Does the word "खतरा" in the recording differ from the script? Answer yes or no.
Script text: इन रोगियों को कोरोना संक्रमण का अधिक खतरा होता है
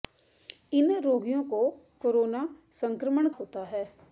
yes